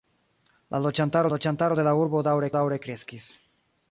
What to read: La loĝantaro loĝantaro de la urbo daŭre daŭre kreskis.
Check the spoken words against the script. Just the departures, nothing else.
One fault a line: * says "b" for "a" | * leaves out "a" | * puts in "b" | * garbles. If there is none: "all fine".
all fine